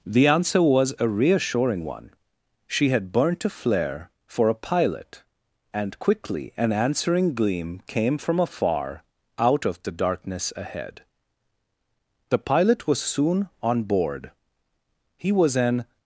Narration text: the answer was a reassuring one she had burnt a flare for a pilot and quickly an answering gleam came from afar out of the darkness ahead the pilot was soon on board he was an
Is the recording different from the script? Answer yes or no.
no